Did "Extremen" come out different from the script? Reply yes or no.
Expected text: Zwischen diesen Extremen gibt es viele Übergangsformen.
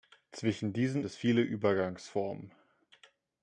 yes